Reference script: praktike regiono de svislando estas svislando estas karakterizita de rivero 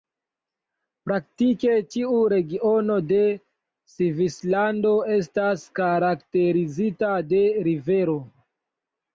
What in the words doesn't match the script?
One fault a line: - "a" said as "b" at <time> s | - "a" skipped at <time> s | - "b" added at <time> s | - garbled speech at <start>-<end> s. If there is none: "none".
- "ĉiu" added at 2.0 s
- "svislando estas" skipped at 5.7 s